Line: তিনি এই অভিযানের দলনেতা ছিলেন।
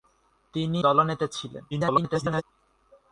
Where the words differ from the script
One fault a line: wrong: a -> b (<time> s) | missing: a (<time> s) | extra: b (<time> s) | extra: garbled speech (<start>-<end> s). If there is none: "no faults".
missing: এই অভিযানের (0.8 s)
extra: garbled speech (1.7-2.4 s)